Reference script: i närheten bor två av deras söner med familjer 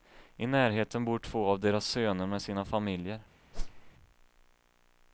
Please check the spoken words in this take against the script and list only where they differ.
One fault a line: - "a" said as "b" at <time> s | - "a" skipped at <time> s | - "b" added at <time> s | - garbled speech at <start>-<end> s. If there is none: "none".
- "sina" added at 2.4 s